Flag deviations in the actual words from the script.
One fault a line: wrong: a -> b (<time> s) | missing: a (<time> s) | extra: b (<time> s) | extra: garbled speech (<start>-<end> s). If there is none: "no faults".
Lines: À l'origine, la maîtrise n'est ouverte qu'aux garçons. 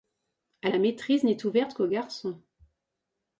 missing: l'origine (0.7 s)